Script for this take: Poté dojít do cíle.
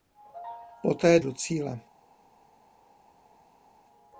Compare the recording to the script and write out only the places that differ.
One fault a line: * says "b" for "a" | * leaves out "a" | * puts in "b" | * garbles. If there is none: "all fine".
* leaves out "dojít"